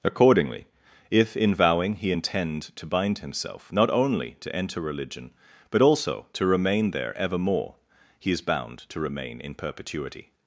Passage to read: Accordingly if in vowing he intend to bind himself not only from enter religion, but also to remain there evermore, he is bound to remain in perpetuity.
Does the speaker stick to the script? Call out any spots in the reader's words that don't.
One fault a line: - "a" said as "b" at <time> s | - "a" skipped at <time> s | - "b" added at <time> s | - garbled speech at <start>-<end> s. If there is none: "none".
- "from" said as "to" at 4.4 s